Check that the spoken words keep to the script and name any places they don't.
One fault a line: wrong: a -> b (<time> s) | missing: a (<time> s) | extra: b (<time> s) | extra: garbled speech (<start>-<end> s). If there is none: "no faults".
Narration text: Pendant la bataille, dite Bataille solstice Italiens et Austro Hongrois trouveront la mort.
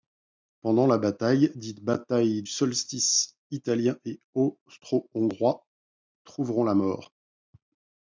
no faults